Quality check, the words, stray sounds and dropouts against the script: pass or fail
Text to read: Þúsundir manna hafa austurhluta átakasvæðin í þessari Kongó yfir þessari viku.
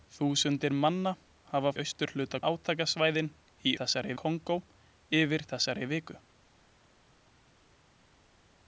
pass